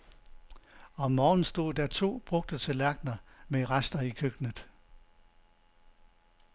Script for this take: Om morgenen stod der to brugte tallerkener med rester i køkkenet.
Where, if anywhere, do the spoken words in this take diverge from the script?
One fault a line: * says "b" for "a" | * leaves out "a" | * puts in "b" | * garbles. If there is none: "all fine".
all fine